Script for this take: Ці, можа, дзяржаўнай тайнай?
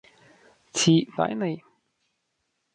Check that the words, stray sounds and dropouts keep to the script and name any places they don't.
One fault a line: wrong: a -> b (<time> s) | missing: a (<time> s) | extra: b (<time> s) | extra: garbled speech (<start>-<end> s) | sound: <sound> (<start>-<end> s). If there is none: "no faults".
missing: можа дзяржаўнай (0.9 s)